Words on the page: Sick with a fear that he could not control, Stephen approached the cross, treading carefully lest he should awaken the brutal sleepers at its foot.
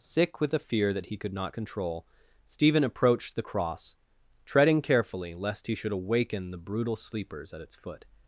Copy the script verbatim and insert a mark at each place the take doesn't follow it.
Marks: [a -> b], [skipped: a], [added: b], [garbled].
Sick with a fear that he could not control, Stephen approached the cross, treading carefully lest he should awaken the brutal sleepers at its foot.